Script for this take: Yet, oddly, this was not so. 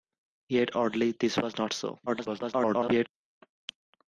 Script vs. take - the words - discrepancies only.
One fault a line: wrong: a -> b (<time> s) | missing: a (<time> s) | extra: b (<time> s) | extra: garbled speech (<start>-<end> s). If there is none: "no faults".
extra: garbled speech (2.1-3.1 s)